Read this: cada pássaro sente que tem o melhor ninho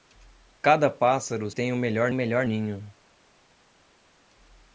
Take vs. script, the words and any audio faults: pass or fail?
fail